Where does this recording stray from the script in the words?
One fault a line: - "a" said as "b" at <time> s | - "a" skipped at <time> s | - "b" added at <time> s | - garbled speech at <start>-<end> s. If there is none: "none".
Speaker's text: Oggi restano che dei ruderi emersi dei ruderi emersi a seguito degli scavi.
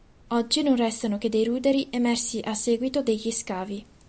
- "non" added at 0.6 s
- "dei ruderi emersi" skipped at 2.4 s